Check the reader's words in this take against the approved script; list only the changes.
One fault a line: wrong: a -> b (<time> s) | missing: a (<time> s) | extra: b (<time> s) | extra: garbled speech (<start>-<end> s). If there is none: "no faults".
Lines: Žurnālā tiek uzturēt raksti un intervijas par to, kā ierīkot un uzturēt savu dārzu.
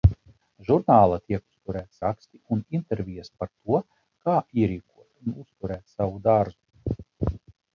no faults